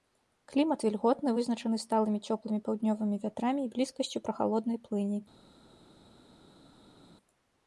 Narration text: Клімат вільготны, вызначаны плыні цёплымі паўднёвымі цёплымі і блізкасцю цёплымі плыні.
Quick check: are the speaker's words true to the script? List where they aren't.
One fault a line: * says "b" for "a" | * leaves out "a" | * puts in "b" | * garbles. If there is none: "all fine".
* says "сталымі" for "плыні"
* says "вятрамі" for "цёплымі"
* says "прахалоднай" for "цёплымі"